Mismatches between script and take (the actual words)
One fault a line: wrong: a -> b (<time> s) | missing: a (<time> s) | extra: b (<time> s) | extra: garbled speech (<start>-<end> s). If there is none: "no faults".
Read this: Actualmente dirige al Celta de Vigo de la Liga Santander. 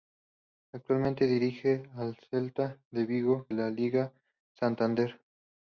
missing: de (3.5 s)